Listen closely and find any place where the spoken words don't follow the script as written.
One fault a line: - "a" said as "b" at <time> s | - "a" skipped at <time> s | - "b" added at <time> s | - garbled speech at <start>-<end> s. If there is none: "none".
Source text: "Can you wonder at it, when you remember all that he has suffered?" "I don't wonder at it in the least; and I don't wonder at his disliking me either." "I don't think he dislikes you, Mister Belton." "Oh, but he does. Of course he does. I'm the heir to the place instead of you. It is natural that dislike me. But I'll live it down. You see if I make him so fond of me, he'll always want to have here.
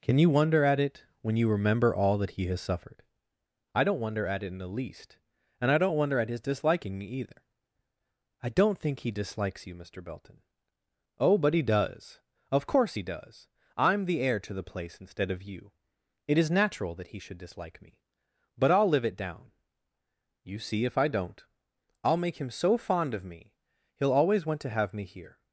- "he should" added at 17.1 s
- "don't I'll" added at 21.1 s
- "me" added at 24.9 s